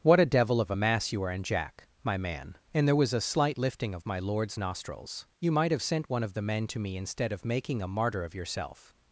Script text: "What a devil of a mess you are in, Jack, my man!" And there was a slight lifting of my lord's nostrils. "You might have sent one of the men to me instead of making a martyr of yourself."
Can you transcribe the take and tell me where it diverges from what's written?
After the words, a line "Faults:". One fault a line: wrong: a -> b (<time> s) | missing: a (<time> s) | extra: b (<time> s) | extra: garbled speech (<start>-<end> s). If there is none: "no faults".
"What a devil of a mass you are in, Jack, my man!" And there was a slight lifting of my lord's nostrils. "You might have sent one of the men to me instead of making a martyr of yourself."
Faults:
wrong: mess -> mass (0.7 s)